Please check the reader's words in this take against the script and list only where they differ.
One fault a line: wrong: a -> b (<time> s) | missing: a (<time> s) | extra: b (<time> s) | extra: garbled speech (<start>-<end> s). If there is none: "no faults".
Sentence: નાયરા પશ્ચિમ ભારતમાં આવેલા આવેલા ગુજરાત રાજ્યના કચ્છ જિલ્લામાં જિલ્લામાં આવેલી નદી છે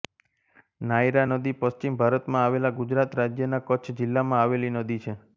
extra: નદી (1.3 s)
missing: આવેલા (2.7 s)
missing: જિલ્લામાં (4.4 s)